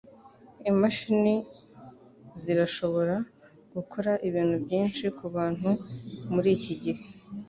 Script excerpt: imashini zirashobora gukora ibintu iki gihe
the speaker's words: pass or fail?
fail